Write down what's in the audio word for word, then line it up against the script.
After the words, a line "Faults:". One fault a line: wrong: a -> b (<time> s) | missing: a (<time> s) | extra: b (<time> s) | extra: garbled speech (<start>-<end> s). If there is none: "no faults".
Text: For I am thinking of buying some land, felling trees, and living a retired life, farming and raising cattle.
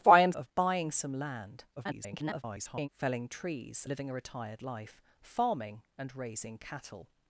For I am of buying some land, [garbled] felling trees, living a retired life, farming and raising cattle.
Faults:
missing: thinking (0.3 s)
extra: garbled speech (1.8-2.9 s)
missing: and (3.9 s)